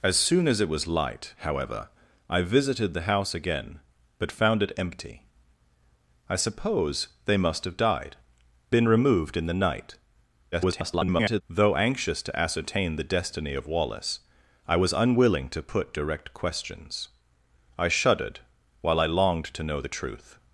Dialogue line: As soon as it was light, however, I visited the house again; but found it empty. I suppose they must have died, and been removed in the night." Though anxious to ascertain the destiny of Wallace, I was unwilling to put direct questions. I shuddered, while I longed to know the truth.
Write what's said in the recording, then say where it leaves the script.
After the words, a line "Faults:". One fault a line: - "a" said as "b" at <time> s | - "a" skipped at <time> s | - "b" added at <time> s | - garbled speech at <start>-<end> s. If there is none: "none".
As soon as it was light, however, I visited the house again; but found it empty. I suppose they must have died, been removed in the night." [garbled] Though anxious to ascertain the destiny of Wallace, I was unwilling to put direct questions. I shuddered, while I longed to know the truth.
Faults:
- "and" skipped at 8.2 s
- garbled speech at 10.5-11.4 s